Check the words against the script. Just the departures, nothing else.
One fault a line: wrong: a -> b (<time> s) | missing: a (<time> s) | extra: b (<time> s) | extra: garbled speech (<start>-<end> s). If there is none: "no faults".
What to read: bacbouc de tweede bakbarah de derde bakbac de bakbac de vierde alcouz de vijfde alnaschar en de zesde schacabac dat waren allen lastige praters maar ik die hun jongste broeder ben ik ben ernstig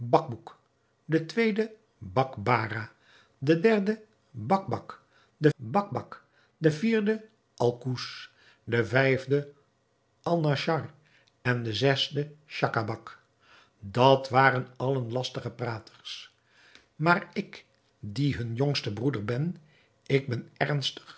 no faults